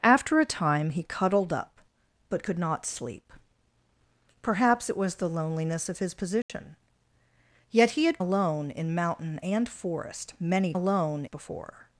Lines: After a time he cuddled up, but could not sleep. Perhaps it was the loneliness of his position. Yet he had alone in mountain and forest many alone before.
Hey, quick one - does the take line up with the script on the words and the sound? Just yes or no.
no